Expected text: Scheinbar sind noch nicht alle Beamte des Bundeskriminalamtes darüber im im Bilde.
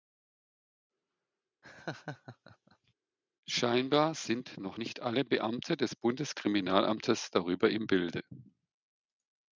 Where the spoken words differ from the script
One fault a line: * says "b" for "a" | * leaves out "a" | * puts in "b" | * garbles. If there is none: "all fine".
* leaves out "im"